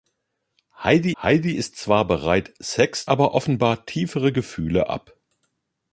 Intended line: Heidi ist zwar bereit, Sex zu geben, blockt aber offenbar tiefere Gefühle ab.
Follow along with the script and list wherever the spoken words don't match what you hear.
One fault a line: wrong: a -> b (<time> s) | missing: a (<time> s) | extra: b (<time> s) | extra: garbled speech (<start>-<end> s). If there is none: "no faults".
extra: heidi (1.2 s)
missing: zu geben blockt (3.1 s)